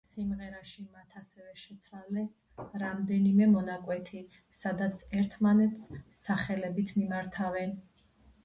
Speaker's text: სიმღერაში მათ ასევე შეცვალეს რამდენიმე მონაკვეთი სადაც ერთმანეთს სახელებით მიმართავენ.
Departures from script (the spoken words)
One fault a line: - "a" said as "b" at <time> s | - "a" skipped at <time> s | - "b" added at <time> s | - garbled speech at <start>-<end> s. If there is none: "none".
none